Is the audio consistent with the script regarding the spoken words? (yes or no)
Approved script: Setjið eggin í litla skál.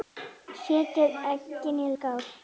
no